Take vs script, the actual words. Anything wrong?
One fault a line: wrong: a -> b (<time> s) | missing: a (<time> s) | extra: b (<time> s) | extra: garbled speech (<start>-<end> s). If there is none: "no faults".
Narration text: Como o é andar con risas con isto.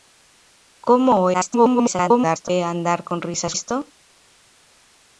extra: garbled speech (1.3-2.5 s)
missing: con (3.5 s)